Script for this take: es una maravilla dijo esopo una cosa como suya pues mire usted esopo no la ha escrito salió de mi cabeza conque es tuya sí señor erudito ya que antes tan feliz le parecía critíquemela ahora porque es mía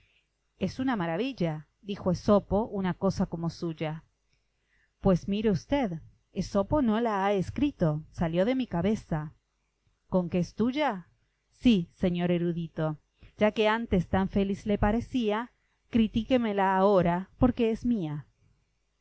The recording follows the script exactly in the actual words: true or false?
true